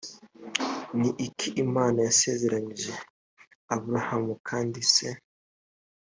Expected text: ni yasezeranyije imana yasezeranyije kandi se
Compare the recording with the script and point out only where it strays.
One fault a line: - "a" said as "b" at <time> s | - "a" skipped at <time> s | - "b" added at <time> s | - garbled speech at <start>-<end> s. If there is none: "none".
- "yasezeranyije" said as "iki" at 1.3 s
- "aburahamu" added at 3.7 s